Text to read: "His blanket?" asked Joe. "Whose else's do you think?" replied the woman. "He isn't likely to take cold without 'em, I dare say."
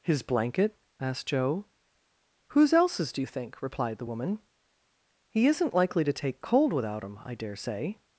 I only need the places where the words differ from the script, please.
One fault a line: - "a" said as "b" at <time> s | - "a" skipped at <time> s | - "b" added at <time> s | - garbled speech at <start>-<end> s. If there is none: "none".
none